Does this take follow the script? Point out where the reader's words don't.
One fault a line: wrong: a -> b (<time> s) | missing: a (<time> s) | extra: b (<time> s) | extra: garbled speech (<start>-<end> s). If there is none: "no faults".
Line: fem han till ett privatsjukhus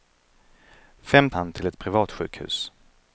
no faults